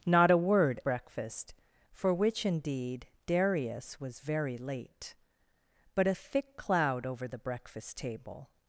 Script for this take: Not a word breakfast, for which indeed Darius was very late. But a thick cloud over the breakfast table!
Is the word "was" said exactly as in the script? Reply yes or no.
yes